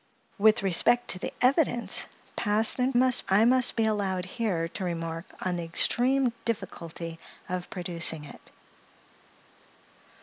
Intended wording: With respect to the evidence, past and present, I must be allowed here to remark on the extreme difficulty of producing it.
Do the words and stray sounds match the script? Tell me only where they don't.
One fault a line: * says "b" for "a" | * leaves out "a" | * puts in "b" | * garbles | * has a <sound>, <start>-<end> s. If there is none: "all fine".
* says "must" for "present"